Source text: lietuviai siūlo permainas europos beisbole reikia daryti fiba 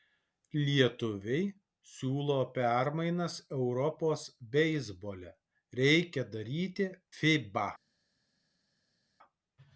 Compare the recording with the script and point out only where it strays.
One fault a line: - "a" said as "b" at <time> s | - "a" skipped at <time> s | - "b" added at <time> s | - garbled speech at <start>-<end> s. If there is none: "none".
none